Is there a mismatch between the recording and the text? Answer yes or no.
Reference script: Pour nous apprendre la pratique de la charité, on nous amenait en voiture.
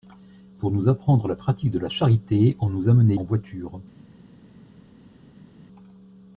no